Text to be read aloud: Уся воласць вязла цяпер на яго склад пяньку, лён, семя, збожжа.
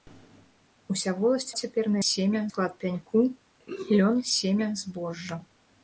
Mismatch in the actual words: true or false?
true